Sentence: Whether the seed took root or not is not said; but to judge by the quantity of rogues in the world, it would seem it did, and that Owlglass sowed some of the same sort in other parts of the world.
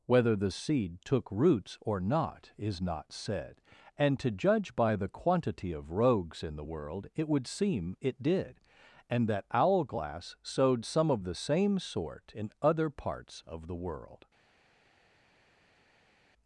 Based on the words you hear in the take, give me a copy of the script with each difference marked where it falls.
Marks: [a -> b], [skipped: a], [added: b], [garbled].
Whether the seed took [root -> roots] or not is not said; [but -> and] to judge by the quantity of rogues in the world, it would seem it did, and that Owlglass sowed some of the same sort in other parts of the world.